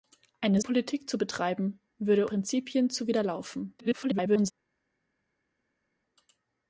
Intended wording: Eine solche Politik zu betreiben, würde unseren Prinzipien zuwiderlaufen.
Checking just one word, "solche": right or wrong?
wrong